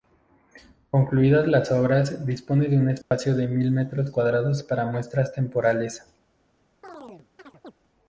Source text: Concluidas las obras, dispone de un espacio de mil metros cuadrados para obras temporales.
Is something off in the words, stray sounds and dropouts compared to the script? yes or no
yes